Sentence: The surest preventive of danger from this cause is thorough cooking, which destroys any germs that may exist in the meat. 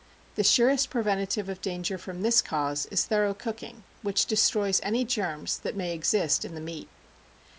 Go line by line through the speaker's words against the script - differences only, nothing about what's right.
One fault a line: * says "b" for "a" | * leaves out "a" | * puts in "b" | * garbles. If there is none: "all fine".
all fine